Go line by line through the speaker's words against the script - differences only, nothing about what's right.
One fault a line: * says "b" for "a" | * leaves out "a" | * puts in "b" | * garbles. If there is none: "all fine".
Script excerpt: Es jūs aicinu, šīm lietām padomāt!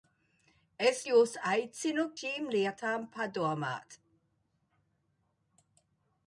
all fine